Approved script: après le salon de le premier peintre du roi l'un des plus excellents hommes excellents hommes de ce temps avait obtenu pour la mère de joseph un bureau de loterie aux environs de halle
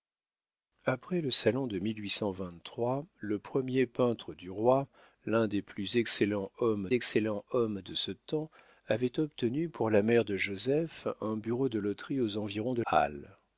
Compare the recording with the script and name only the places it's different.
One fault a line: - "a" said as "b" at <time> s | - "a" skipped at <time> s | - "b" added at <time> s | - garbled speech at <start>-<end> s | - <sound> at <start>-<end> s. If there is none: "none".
none